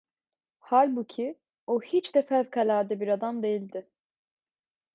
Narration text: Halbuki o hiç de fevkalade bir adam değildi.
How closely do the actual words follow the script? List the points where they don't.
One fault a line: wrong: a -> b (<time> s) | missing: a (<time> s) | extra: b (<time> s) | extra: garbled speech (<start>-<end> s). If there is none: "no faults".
no faults